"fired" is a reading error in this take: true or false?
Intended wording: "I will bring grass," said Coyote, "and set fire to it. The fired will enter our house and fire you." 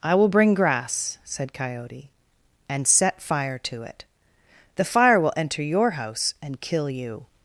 true